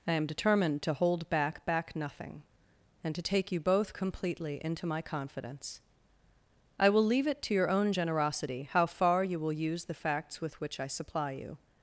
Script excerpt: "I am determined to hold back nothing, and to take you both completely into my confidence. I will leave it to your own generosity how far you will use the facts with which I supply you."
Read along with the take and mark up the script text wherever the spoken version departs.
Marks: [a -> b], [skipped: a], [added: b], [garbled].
"I am determined to hold back [added: back] nothing, and to take you both completely into my confidence. I will leave it to your own generosity how far you will use the facts with which I supply you."